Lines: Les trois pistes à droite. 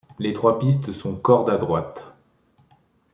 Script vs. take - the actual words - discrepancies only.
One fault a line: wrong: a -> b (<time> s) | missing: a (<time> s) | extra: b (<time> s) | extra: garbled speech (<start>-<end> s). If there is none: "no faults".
extra: sont corde (0.9 s)